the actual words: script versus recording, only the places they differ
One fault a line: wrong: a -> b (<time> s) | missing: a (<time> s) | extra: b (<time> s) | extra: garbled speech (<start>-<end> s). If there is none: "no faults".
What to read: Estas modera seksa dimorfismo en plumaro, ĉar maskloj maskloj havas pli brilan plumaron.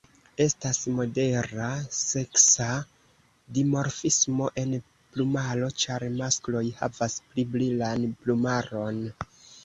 missing: maskloj (6.6 s)